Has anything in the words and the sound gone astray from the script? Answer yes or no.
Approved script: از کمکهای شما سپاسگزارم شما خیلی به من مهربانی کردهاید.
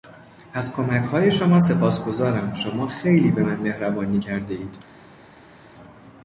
no